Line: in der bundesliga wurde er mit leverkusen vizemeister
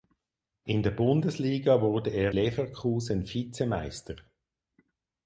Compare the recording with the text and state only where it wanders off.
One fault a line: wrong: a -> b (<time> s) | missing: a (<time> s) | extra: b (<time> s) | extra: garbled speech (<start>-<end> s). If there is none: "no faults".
missing: mit (2.4 s)